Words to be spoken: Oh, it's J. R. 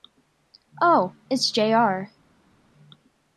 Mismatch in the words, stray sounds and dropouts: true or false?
false